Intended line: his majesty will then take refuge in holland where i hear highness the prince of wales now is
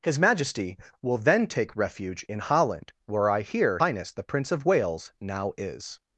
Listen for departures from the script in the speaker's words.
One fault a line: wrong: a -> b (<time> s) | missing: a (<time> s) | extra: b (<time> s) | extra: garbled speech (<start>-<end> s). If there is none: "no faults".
no faults